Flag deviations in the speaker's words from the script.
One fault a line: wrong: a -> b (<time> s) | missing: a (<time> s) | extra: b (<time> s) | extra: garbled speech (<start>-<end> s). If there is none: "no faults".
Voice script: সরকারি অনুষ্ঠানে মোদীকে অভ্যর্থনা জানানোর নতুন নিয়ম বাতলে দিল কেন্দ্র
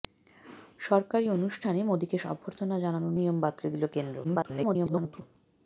missing: নতুন (3.1 s)
extra: garbled speech (4.2-5.2 s)